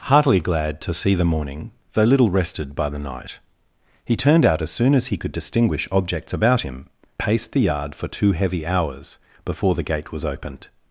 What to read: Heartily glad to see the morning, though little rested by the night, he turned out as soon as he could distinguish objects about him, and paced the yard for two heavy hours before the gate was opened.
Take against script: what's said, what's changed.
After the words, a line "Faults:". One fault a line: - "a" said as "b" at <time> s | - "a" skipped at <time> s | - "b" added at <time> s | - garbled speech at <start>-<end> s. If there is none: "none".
Heartily glad to see the morning, though little rested by the night, he turned out as soon as he could distinguish objects about him, paced the yard for two heavy hours before the gate was opened.
Faults:
- "and" skipped at 6.9 s